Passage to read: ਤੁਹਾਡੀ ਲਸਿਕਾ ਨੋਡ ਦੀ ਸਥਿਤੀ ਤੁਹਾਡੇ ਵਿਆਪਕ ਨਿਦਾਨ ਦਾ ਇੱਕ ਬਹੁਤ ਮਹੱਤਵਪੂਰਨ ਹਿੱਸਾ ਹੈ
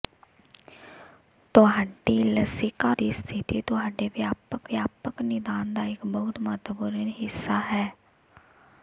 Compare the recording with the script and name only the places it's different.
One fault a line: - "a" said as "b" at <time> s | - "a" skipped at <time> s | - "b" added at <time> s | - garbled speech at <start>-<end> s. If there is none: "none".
- "ਨੋਡ" skipped at 2.9 s
- "ਵਿਆਪਕ" added at 4.7 s